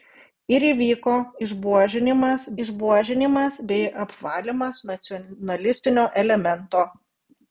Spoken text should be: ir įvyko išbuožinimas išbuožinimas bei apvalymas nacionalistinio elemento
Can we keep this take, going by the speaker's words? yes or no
yes